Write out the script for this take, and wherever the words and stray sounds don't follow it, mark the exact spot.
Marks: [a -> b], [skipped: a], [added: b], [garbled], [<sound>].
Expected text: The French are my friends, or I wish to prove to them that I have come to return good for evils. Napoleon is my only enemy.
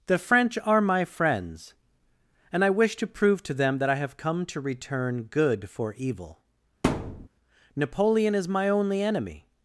The French are my friends, [or -> and] I wish to prove to them that I have come to return good for [evils. -> evil] [thud] Napoleon is my only enemy.